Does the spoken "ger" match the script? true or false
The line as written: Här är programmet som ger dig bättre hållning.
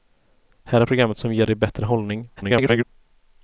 true